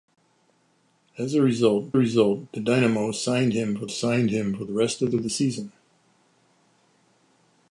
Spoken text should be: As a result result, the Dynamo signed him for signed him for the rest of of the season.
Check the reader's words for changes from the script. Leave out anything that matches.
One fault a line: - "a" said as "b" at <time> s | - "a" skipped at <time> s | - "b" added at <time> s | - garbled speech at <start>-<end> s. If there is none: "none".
none